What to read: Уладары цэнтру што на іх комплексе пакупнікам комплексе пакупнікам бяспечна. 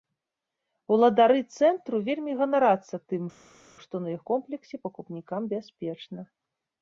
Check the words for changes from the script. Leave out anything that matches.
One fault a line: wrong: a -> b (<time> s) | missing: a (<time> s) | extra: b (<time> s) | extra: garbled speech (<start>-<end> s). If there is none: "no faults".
extra: вельмі ганарацца тым (2.1 s)
missing: комплексе пакупнікам (5.4 s)